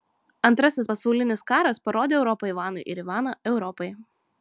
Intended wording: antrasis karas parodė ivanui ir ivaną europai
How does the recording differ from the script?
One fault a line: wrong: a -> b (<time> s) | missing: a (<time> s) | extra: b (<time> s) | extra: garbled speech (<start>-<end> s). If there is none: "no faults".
extra: pasaulinis (0.9 s)
extra: europą (2.2 s)